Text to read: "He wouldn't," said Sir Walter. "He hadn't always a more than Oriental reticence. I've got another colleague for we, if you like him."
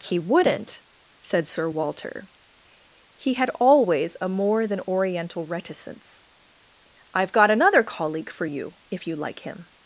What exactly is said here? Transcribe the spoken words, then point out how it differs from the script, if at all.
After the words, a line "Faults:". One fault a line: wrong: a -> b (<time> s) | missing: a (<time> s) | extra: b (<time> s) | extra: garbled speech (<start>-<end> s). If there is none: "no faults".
"He wouldn't," said Sir Walter. "He had always a more than Oriental reticence. I've got another colleague for you, if you like him."
Faults:
wrong: hadn't -> had (3.3 s)
wrong: we -> you (8.4 s)